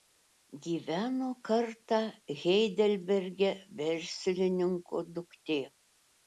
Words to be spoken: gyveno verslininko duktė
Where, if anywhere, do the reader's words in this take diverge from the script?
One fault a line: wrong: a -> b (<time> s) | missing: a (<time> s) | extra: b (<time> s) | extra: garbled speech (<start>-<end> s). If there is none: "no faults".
extra: kartą heidelberge (1.5 s)